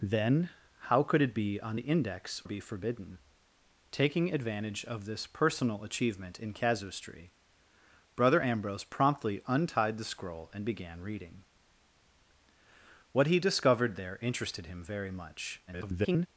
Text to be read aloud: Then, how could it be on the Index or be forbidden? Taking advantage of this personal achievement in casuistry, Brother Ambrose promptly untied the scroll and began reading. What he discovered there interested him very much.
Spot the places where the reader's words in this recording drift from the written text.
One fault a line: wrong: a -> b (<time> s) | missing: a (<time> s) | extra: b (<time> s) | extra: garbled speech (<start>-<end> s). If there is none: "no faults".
missing: or (2.4 s)
extra: garbled speech (15.7-16.3 s)